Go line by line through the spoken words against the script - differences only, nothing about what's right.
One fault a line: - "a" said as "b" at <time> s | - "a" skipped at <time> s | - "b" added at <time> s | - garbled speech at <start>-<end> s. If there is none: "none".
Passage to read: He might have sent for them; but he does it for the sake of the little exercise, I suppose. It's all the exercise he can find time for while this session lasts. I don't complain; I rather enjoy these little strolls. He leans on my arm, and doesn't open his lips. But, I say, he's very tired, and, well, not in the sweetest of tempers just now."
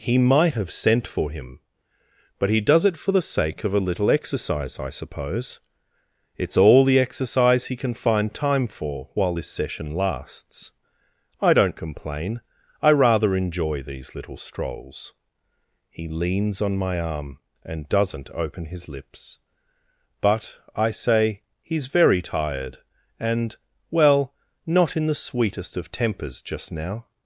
- "them" said as "him" at 1.3 s
- "the" said as "a" at 3.8 s